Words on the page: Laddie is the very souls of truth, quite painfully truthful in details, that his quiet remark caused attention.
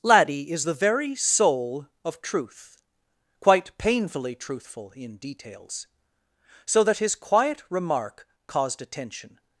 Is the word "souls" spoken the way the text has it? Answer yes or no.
no